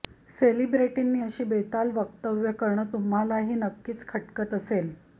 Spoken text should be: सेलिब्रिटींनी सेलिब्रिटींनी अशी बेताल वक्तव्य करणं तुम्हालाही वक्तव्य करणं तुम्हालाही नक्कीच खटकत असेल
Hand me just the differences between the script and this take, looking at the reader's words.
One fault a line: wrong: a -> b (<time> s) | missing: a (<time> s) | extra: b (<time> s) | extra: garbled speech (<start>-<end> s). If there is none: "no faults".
missing: सेलिब्रिटींनी (1.2 s)
missing: वक्तव्य करणं तुम्हालाही (3.5 s)